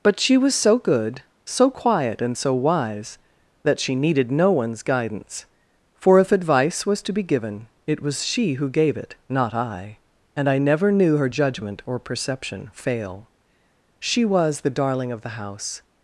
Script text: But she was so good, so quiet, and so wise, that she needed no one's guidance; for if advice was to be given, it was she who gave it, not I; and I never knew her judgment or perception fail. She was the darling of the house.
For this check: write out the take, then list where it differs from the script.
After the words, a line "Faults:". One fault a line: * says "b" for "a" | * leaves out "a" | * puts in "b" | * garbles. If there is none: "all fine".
But she was so good, so quiet, and so wise, that she needed no one's guidance; for if advice was to be given, it was she who gave it, not I; and I never knew her judgment or perception fail. She was the darling of the house.
Faults:
all fine